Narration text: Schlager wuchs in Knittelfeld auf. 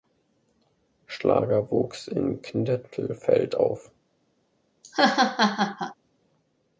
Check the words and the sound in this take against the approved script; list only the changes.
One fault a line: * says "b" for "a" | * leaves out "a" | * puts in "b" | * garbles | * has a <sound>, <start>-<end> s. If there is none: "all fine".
* has a laugh, 4.8-6.0 s